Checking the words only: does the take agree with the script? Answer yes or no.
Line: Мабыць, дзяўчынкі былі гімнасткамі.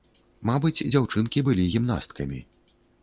yes